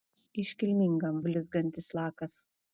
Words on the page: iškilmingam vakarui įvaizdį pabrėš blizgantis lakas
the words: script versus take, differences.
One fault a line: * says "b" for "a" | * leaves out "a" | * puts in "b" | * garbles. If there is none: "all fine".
* leaves out "vakarui įvaizdį pabrėš"